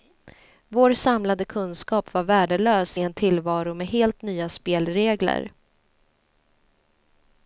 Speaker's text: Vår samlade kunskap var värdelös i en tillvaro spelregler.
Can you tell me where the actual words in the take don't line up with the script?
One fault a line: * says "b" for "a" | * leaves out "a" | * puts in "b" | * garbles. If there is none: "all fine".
* puts in "med helt nya"